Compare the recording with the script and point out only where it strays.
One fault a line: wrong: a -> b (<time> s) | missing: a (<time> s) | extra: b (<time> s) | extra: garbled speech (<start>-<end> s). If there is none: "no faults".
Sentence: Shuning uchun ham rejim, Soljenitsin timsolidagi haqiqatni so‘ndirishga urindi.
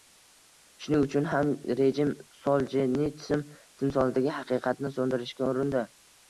no faults